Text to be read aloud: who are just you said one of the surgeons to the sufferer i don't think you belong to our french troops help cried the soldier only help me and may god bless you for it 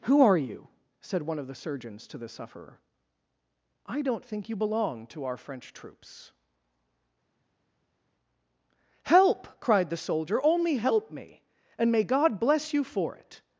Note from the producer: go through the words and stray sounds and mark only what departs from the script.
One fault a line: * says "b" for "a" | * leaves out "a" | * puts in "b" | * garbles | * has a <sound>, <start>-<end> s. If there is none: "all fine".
* leaves out "just"